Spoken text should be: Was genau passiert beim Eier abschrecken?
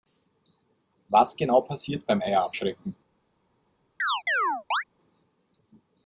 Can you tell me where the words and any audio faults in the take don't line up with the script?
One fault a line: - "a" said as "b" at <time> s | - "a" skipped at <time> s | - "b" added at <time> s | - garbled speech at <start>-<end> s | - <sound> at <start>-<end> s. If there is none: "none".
- chirp at 4.0-4.8 s